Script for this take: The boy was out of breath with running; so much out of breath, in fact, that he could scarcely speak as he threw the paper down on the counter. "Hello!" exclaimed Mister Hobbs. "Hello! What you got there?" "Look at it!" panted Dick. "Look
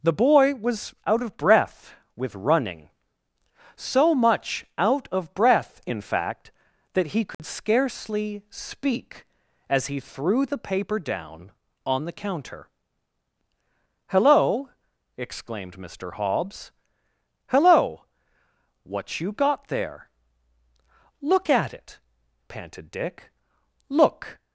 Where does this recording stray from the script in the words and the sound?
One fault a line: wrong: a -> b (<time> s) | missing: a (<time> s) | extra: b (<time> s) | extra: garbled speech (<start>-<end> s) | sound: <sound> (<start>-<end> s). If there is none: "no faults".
sound: dropout (7.3-7.4 s)